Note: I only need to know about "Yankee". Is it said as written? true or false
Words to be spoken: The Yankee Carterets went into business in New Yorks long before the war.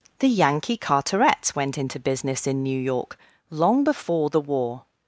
true